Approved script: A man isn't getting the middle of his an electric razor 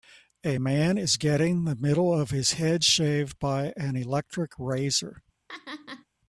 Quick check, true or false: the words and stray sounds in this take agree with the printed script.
false